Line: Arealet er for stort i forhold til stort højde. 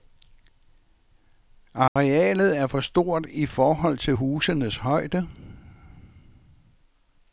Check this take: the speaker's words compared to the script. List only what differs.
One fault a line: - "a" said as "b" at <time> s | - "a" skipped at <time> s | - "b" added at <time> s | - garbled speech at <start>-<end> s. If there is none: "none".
- "stort" said as "husenes" at 4.1 s